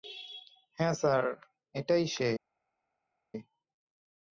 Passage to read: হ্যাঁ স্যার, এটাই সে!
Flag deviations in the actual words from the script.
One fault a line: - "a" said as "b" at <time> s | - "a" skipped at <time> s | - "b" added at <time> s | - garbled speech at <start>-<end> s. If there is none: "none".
none